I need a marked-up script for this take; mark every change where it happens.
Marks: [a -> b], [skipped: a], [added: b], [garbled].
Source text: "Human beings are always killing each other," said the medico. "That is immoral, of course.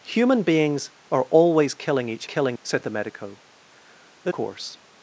"Human beings are always killing each [other," -> killing] said the medico. "That [skipped: is immoral, of] course.